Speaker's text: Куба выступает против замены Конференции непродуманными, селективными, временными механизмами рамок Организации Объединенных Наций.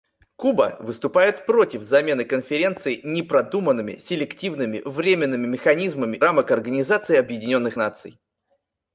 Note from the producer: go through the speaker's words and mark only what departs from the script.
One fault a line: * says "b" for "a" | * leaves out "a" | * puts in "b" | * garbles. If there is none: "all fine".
all fine